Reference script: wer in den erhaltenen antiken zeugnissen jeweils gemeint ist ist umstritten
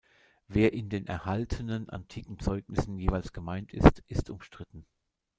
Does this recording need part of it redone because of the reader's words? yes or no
no